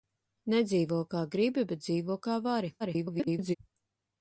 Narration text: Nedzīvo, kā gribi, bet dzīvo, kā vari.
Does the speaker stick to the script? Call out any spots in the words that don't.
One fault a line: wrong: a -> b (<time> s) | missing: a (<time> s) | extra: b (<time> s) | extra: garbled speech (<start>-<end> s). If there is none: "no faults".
extra: garbled speech (2.8-3.6 s)